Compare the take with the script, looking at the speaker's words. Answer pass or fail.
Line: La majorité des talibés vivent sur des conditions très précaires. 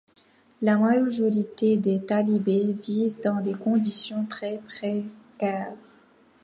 fail